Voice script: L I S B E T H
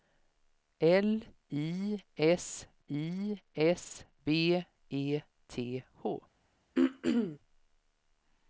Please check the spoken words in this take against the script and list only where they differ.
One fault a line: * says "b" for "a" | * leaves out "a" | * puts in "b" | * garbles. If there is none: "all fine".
* puts in "I S"